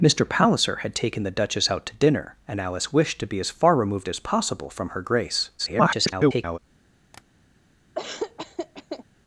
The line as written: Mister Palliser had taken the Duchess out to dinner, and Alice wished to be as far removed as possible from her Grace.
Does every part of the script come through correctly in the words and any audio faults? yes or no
no